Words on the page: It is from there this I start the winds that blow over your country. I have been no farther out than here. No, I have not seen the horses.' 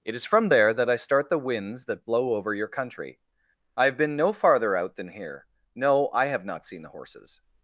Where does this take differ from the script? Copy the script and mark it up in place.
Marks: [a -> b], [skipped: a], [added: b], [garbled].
It is from there [this -> that] I start the winds that blow over your country. I have been no farther out than here. No, I have not seen the horses.'